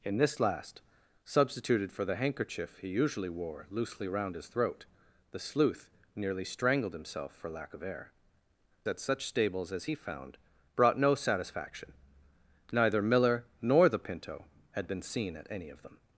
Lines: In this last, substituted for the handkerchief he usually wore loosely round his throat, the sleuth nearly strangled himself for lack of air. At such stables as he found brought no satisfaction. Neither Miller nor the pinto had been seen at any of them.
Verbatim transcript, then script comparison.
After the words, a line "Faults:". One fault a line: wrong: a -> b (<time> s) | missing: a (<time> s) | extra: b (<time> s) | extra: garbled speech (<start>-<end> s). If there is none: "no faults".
In this last, substituted for the handkerchief he usually wore loosely round his throat, the sleuth nearly strangled himself for lack of air. At such stables as he found brought no satisfaction. Neither Miller nor the pinto had been seen at any of them.
Faults:
no faults